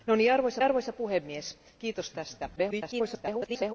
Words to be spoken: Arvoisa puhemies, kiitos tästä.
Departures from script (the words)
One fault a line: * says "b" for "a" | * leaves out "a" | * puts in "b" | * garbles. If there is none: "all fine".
* puts in "arvoisa"
* garbles